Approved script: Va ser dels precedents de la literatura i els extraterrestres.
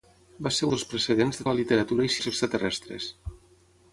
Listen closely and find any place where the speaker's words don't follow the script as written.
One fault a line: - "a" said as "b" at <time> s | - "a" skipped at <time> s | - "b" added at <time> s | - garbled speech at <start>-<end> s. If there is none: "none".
none